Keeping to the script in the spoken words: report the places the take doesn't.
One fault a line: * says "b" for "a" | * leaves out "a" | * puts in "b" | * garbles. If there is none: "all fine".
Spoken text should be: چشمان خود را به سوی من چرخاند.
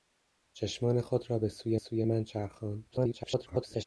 * puts in "سوی"
* garbles